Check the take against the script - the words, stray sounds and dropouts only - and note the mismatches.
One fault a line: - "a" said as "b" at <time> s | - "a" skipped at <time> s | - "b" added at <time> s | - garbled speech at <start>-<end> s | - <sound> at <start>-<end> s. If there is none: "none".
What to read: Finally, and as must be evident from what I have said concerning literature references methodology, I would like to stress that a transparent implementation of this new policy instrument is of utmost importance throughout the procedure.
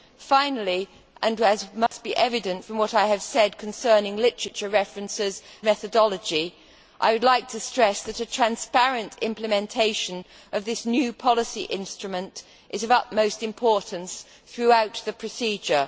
- dropout at 1.9-1.9 s